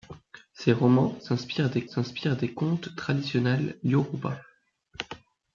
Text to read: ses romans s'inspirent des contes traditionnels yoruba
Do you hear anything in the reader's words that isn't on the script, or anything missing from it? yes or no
yes